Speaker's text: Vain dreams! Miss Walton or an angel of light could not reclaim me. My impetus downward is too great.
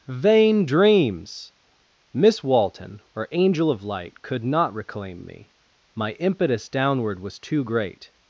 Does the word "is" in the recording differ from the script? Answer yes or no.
yes